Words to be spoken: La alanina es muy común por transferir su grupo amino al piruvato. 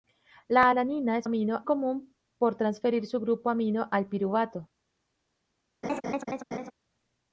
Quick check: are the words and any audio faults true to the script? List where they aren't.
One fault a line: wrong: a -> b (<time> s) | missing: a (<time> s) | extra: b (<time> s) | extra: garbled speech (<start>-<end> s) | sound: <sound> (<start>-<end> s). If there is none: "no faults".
wrong: muy -> amino (1.2 s)
sound: laugh (5.8-6.7 s)